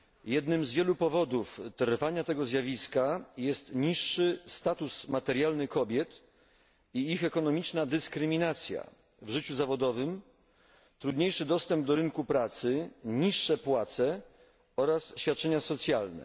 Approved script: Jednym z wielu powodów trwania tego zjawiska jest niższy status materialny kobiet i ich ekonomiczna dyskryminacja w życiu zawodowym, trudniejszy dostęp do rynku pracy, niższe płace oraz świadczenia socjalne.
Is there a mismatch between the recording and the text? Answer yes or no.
no